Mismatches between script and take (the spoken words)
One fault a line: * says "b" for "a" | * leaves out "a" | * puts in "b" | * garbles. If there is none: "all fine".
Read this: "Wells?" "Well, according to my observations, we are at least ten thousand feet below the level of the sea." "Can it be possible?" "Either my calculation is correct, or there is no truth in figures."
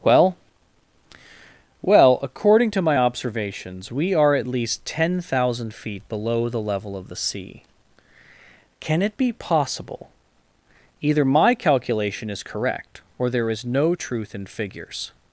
* says "Well" for "Wells"